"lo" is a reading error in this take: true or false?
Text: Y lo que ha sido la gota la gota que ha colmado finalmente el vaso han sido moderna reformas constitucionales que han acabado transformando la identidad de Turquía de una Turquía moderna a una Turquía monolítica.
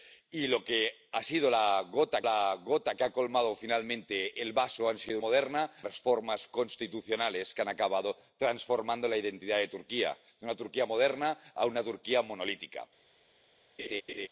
false